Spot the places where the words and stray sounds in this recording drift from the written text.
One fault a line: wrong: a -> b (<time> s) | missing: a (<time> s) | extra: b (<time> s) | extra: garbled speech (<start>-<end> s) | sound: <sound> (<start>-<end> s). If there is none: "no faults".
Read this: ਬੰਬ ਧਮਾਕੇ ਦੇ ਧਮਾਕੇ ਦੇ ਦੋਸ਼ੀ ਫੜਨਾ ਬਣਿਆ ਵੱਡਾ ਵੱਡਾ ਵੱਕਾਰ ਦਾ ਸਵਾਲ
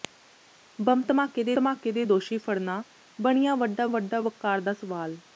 no faults